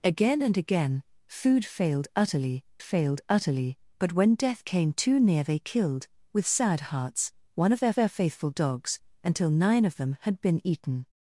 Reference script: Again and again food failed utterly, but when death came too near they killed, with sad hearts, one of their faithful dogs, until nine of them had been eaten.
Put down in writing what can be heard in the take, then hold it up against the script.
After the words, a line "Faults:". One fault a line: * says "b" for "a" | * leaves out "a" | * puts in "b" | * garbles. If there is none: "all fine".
Again and again food failed utterly failed utterly, but when death came too near they killed, with sad hearts, one of their their faithful dogs, until nine of them had been eaten.
Faults:
* puts in "failed utterly"
* puts in "their"